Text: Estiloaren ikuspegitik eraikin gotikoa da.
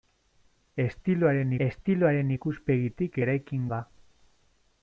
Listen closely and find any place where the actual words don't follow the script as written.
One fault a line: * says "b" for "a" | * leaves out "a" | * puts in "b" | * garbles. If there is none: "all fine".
* puts in "estiloaren"
* leaves out "gotikoa"